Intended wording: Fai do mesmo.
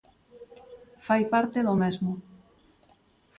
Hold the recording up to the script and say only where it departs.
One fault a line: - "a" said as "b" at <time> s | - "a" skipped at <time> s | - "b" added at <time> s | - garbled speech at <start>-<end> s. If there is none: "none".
- "parte" added at 1.3 s